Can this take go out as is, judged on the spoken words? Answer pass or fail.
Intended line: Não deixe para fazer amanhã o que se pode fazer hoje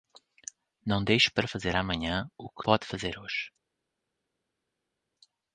fail